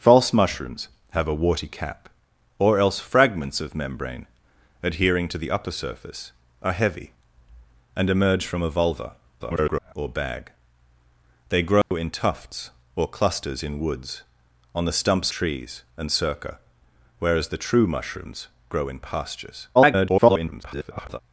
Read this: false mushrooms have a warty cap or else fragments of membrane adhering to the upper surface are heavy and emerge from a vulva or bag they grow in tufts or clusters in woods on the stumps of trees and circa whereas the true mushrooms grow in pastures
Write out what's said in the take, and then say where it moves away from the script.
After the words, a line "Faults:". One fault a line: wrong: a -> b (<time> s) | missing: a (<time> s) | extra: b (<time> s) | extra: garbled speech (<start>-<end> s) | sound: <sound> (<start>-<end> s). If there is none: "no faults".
false mushrooms have a warty cap or else fragments of membrane adhering to the upper surface are heavy and emerge from a vulva [garbled] or bag they grow in tufts or clusters in woods on the stumps trees and circa whereas the true mushrooms grow in pastures [garbled]
Faults:
extra: garbled speech (9.4-9.9 s)
sound: dropout (11.8-11.9 s)
missing: of (15.3 s)
extra: garbled speech (19.7-21.2 s)